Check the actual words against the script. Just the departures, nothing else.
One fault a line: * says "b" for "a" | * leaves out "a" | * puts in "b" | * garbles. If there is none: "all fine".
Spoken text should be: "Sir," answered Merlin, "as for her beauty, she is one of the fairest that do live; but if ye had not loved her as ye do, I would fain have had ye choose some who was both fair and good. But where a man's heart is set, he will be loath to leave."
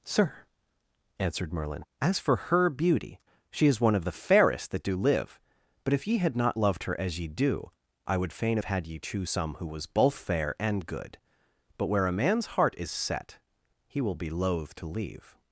all fine